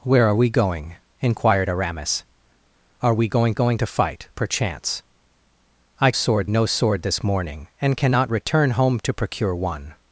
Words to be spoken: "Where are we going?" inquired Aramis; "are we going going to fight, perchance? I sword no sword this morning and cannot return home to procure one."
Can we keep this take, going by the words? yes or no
yes